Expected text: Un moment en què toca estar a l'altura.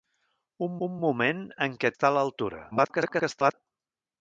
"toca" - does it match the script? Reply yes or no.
no